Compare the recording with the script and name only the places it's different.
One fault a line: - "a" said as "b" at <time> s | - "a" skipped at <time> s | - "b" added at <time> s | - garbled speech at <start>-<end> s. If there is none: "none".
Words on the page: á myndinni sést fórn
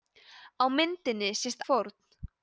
none